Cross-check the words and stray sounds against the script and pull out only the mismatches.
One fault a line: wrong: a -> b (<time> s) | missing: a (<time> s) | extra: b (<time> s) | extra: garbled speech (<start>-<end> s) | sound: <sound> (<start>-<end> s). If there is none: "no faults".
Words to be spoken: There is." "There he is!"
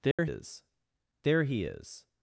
sound: dropout (0.1-0.2 s)